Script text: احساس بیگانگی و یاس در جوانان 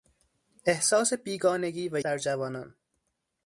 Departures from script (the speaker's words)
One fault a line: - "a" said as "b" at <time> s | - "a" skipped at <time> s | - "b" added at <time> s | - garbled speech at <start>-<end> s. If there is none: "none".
- "یاس" skipped at 2.0 s